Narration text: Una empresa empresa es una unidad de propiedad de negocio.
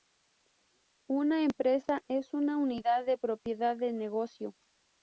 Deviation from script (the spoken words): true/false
true